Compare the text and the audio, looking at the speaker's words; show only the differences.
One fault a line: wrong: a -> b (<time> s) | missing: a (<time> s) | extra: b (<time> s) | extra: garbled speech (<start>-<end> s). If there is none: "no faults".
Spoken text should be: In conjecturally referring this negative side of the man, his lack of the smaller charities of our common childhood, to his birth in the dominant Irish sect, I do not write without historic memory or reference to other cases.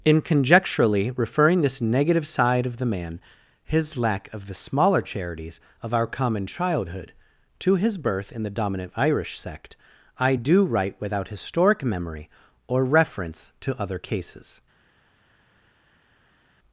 missing: not (10.6 s)